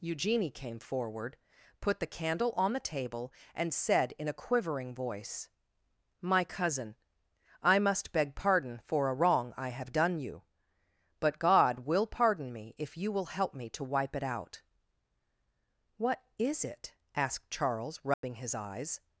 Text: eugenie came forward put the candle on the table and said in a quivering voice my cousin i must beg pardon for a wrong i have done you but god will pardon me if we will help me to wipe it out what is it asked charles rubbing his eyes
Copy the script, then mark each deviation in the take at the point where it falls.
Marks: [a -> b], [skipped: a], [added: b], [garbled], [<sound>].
eugenie came forward put the candle on the table and said in a quivering voice my cousin i must beg pardon for a wrong i have done you but god will pardon me if [we -> you] will help me to wipe it out what is it asked charles rubbing [dropout] his eyes